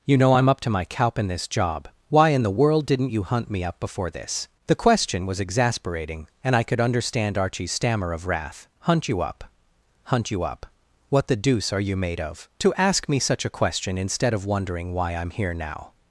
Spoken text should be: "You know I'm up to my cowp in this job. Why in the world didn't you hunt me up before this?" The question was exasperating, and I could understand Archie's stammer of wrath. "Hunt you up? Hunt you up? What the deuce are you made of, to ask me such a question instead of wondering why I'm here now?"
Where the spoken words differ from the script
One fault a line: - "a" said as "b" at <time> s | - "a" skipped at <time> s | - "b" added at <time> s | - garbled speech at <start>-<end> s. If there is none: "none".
none